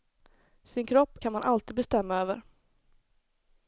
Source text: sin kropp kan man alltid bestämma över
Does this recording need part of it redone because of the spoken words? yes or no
no